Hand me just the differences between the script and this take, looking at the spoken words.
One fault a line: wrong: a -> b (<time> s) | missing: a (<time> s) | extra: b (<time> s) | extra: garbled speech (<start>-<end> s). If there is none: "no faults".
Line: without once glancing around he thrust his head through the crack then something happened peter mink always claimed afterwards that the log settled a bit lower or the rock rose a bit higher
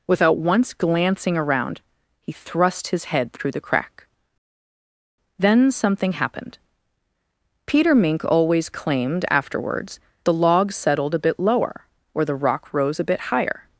missing: that (10.0 s)